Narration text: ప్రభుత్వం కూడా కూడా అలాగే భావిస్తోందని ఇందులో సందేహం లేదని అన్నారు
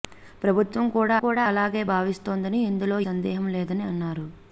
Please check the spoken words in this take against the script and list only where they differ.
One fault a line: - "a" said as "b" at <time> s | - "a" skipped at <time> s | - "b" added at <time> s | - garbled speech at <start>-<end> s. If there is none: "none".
none